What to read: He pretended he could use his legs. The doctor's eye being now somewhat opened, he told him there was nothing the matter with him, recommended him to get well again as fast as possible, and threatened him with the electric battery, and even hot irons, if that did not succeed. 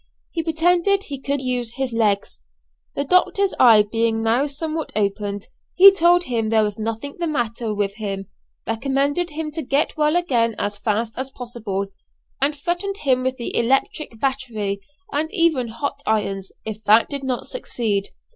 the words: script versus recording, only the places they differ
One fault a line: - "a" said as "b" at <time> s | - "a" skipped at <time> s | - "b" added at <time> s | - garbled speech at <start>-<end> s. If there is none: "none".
none